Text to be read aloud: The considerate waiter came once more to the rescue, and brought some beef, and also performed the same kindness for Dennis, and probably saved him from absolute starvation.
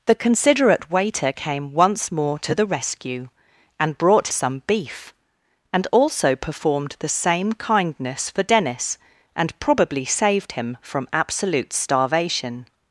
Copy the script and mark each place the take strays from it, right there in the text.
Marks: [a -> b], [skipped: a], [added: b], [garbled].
The considerate waiter came once more to the rescue, and brought some beef, and also performed the same kindness for Dennis, and probably saved him from absolute starvation.